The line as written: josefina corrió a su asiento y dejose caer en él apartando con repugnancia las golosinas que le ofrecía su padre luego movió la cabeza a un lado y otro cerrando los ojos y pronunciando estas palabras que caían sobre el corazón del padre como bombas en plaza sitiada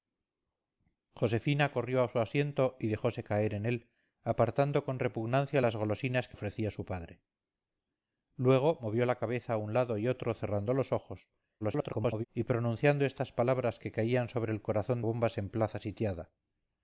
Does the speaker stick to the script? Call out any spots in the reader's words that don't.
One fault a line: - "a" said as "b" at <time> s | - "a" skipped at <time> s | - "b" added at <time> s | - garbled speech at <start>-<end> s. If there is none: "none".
- "le" skipped at 6.4 s
- garbled speech at 11.6-12.2 s
- "del padre como" skipped at 15.0 s